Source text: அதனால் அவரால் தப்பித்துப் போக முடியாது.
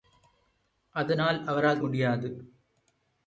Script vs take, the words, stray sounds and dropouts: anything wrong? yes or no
yes